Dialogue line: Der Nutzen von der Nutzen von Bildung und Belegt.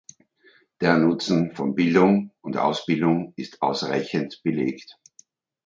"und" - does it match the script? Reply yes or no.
no